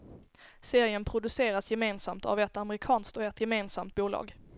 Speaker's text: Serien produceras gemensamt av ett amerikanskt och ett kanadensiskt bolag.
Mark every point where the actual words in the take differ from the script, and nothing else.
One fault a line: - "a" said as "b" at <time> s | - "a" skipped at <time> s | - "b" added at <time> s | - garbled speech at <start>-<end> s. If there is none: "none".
- "kanadensiskt" said as "gemensamt" at 3.4 s